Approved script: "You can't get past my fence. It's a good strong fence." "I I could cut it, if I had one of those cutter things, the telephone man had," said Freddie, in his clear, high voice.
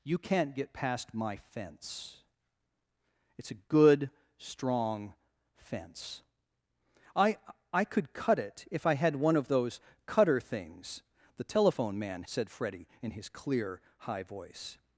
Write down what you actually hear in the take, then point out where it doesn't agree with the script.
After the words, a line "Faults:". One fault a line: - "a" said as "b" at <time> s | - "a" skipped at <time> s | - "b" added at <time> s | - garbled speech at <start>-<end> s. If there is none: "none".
"You can't get past my fence. It's a good strong fence." "I I could cut it, if I had one of those cutter things, the telephone man," said Freddie, in his clear, high voice.
Faults:
- "had" skipped at 12.2 s